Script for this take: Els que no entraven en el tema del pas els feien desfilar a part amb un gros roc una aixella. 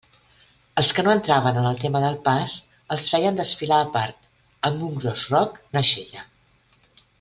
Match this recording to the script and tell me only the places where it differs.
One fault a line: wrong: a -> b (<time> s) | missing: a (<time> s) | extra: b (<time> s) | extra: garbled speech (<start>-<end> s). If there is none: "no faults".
no faults